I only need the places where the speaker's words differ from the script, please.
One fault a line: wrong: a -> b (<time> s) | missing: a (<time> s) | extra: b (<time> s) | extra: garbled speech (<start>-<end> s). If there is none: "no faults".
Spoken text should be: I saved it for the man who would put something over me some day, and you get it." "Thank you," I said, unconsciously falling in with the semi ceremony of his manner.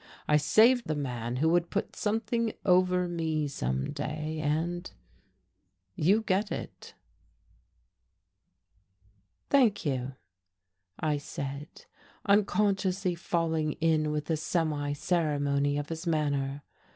missing: it for (0.9 s)